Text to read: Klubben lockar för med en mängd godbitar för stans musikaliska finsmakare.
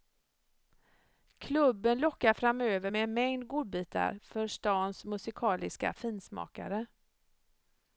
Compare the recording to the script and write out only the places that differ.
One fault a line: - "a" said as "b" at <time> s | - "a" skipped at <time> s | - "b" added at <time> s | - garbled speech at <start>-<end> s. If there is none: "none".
- "för" said as "framöver" at 2.3 s